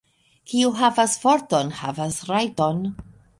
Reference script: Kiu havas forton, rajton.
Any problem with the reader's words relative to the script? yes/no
yes